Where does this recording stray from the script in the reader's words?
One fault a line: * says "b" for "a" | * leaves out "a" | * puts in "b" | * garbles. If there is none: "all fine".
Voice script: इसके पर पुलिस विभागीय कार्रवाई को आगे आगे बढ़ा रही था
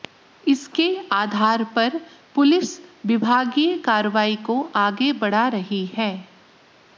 * puts in "आधार"
* leaves out "आगे"
* says "है" for "था"